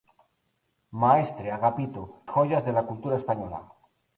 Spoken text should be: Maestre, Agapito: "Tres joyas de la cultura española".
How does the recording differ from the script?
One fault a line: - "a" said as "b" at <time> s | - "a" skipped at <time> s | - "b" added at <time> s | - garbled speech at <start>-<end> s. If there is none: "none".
- "Tres" skipped at 2.0 s